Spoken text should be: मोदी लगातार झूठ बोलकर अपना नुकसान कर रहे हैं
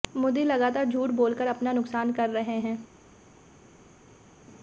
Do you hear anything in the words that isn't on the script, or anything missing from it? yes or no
no